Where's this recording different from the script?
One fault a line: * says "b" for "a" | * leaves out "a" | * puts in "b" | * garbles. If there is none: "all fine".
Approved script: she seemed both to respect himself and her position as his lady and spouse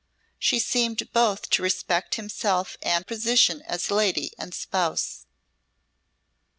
* leaves out "her"
* leaves out "his"